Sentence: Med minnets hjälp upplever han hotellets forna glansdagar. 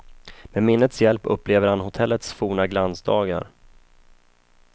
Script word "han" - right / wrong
right